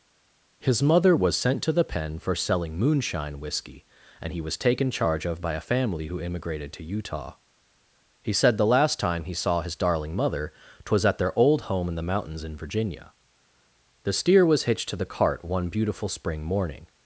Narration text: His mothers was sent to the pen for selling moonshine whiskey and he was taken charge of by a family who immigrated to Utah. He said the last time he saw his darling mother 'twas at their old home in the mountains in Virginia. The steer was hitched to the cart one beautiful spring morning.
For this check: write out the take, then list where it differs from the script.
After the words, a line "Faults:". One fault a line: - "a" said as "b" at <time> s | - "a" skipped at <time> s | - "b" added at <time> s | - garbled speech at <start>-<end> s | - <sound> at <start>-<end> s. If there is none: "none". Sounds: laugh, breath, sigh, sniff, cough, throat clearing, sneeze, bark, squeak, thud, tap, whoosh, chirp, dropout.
His mother was sent to the pen for selling moonshine whiskey and he was taken charge of by a family who immigrated to Utah. He said the last time he saw his darling mother 'twas at their old home in the mountains in Virginia. The steer was hitched to the cart one beautiful spring morning.
Faults:
- "mothers" said as "mother" at 0.8 s